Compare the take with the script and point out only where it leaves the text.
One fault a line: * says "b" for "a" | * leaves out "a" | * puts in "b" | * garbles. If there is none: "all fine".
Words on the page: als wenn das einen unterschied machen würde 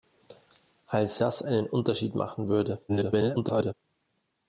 * leaves out "wenn"
* garbles